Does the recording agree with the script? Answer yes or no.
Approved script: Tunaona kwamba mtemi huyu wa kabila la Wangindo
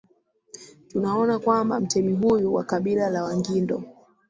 yes